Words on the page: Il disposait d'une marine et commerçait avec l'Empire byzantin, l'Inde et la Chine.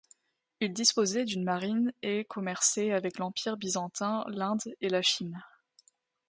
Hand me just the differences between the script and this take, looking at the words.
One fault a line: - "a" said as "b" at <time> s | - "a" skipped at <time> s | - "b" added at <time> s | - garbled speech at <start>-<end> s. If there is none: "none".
none